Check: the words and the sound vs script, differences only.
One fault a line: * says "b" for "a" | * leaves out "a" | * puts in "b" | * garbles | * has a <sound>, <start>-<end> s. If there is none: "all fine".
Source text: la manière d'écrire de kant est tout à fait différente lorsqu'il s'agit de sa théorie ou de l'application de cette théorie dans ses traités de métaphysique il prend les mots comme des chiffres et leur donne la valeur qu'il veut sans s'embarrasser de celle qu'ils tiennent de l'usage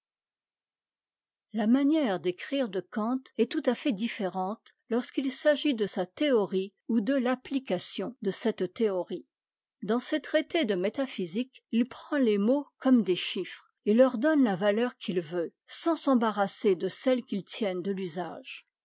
all fine